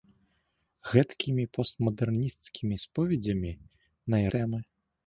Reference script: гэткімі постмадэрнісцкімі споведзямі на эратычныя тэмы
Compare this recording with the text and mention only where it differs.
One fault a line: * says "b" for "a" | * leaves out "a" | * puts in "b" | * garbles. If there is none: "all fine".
* leaves out "эратычныя"